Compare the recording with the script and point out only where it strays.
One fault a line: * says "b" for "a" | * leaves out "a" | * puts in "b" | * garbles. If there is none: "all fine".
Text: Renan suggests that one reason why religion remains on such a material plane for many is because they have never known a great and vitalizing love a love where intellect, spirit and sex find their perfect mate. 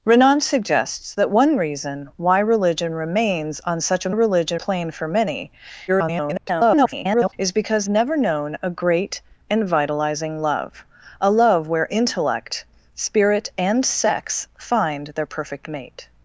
* says "religion" for "material"
* garbles
* leaves out "they have"